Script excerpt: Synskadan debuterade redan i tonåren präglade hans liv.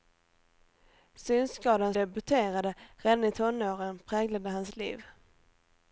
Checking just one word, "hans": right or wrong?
right